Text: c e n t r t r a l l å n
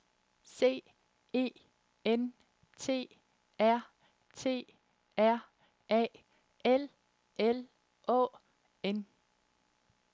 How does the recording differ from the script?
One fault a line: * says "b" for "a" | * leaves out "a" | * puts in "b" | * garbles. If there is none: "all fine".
all fine